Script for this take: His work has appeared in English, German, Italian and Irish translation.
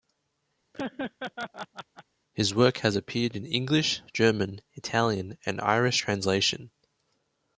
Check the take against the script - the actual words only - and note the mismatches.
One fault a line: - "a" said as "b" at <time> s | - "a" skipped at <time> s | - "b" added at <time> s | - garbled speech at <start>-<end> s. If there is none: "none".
none